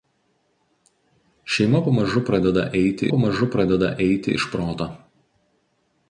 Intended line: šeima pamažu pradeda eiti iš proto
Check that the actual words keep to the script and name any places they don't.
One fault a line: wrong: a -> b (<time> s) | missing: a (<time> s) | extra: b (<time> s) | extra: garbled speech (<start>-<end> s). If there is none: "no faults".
extra: pamažu pradeda eiti (3.1 s)